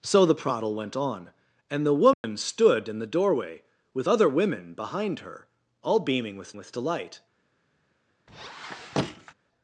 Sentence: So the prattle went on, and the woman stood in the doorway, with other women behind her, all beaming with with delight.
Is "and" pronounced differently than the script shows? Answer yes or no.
no